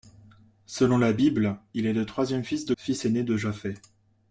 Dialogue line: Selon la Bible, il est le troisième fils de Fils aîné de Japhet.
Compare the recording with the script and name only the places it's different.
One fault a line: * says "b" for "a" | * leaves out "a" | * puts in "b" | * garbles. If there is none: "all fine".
all fine